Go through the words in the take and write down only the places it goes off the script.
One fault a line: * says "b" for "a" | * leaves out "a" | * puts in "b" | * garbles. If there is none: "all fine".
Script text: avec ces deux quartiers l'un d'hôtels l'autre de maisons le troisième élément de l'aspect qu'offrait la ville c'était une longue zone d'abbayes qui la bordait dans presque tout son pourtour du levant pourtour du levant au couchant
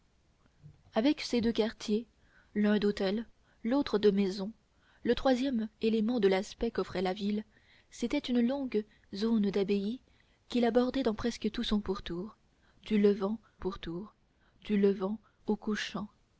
all fine